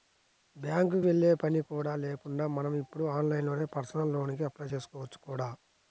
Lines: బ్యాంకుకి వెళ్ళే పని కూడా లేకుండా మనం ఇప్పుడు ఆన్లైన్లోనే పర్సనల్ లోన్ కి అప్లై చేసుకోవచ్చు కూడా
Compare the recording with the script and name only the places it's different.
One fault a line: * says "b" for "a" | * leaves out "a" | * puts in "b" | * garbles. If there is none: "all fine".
all fine